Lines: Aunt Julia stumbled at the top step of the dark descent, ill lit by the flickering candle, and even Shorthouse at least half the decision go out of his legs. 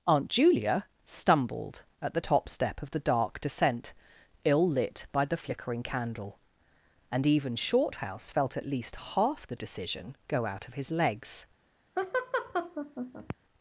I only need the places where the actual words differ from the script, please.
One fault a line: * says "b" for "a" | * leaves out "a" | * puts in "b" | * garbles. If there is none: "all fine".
* puts in "felt"